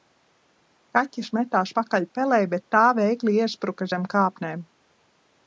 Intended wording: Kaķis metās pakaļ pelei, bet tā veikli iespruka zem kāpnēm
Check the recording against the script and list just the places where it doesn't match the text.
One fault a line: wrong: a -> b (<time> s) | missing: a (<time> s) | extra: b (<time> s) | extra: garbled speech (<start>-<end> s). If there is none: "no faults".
no faults